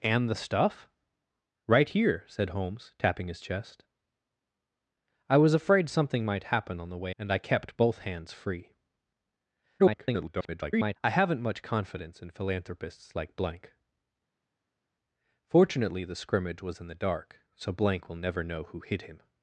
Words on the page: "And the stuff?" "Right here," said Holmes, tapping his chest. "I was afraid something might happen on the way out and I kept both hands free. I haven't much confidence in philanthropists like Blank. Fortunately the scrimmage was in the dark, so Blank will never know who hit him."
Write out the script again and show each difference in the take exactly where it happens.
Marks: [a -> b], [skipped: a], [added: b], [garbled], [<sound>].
"And the stuff?" "Right here," said Holmes, tapping his chest. "I was afraid something might happen on the way [skipped: out] and I kept both hands free. [garbled] I haven't much confidence in philanthropists like Blank. Fortunately the scrimmage was in the dark, so Blank will never know who hit him."